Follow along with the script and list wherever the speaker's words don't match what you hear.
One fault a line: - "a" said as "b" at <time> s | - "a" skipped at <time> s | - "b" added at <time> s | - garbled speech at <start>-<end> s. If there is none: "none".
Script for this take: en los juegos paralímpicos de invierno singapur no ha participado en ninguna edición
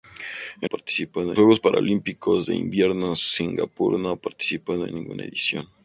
- "los" said as "participado" at 0.6 s